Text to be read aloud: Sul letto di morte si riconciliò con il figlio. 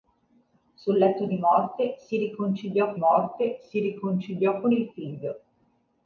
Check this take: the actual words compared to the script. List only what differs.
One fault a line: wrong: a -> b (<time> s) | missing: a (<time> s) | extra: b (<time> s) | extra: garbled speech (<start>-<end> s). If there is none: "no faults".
extra: morte si riconciliò (3.0 s)